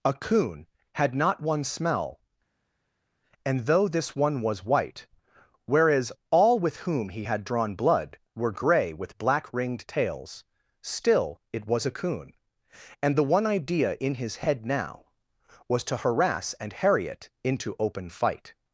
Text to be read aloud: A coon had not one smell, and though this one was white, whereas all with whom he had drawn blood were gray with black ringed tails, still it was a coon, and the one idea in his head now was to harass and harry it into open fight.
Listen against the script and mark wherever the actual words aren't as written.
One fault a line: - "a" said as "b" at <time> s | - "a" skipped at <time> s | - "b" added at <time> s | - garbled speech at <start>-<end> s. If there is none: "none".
none